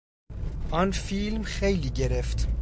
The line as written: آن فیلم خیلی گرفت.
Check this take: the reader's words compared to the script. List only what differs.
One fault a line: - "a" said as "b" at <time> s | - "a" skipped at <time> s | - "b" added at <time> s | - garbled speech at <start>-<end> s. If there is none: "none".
none